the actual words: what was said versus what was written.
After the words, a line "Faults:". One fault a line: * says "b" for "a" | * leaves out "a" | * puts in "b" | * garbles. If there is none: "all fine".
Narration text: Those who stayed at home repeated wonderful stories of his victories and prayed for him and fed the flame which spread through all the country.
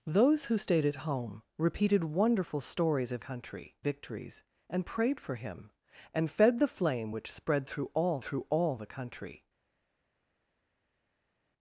Those who stayed at home repeated wonderful stories of country victories and prayed for him and fed the flame which spread through all through all the country.
Faults:
* says "country" for "his"
* puts in "through all"